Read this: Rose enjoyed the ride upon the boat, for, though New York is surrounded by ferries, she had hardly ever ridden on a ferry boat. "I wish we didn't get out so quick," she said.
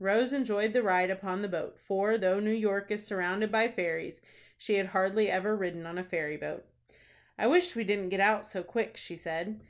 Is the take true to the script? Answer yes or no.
yes